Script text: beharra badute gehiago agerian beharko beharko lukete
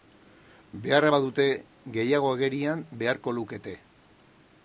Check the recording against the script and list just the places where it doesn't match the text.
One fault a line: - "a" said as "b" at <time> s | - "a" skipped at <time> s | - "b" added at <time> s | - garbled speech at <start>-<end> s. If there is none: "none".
- "beharko" skipped at 3.4 s